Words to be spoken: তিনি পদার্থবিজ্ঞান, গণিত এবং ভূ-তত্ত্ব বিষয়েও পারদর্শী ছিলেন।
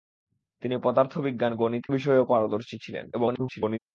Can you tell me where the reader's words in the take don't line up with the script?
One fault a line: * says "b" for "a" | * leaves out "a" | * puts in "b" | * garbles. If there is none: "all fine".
* leaves out "এবং ভূ-তত্ত্ব"
* garbles